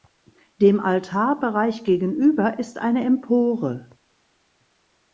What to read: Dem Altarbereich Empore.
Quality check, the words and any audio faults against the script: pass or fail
fail